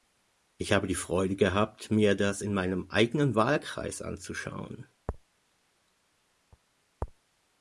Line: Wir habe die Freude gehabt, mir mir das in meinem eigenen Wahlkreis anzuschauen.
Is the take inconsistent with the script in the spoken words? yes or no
yes